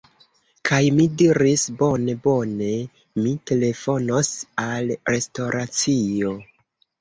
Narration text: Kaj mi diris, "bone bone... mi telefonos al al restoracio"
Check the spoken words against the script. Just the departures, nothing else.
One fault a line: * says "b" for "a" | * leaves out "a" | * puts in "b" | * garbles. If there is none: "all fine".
* leaves out "al"